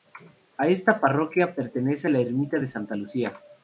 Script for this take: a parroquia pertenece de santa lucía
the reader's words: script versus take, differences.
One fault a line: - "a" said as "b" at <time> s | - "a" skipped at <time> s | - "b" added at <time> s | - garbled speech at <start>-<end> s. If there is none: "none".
- "esta" added at 0.7 s
- "la ermita" added at 2.1 s